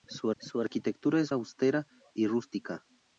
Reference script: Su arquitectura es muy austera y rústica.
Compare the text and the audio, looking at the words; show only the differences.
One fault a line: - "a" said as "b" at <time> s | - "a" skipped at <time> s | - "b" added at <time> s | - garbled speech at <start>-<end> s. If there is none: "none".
- "su" added at 0.4 s
- "muy" skipped at 1.3 s